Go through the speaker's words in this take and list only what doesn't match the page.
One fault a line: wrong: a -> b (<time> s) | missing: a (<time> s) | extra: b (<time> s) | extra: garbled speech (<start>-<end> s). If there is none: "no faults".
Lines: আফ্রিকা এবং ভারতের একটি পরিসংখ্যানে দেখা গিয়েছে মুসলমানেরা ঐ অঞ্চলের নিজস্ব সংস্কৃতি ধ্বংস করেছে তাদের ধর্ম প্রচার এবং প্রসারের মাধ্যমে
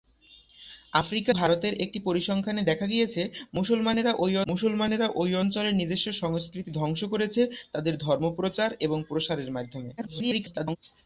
missing: এবং (1.3 s)
extra: মুসলমানেরা ঐ (4.5 s)
extra: garbled speech (10.0-10.8 s)